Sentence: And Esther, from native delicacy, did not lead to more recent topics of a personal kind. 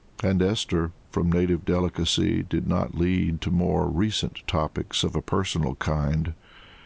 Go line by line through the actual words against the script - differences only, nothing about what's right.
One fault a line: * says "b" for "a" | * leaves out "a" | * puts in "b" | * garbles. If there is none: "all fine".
all fine